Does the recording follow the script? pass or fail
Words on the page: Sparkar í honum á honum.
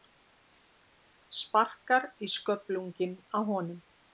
fail